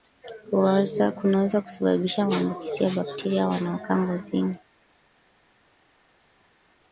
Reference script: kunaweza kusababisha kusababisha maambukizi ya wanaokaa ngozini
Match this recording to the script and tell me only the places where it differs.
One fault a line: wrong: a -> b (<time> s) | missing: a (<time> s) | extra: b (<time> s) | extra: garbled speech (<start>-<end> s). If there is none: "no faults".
missing: kusababisha (2.2 s)
extra: bakteria (2.9 s)